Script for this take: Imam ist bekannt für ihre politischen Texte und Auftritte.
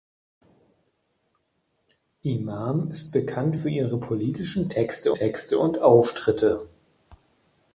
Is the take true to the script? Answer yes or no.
no